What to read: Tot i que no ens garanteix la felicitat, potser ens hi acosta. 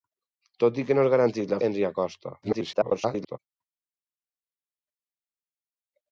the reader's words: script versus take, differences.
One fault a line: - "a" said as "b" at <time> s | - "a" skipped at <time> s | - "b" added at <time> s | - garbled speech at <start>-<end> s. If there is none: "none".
- "felicitat potser" skipped at 1.6 s
- garbled speech at 2.4-3.4 s